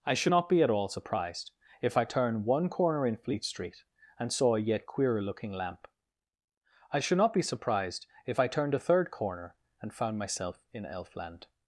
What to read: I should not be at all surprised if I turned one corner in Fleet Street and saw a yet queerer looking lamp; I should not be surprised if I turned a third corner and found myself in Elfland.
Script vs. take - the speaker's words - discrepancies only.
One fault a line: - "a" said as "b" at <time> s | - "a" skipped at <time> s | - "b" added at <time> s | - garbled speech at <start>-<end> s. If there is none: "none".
none